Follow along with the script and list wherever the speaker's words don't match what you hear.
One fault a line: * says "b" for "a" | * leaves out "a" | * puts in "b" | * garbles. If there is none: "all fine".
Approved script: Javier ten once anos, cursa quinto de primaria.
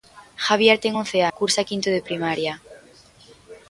* leaves out "anos"